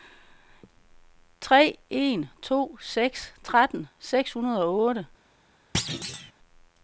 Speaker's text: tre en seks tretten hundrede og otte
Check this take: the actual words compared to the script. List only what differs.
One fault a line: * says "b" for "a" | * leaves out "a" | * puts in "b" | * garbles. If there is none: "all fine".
* puts in "to"
* puts in "seks"